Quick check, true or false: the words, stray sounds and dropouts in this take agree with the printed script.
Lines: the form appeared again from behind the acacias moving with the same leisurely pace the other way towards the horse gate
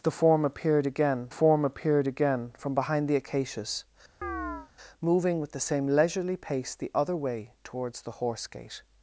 false